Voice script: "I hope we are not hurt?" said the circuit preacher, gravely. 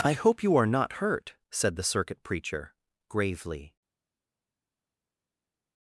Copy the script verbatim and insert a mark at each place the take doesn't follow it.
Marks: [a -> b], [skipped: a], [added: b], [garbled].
"I hope [we -> you] are not hurt?" said the circuit preacher, gravely.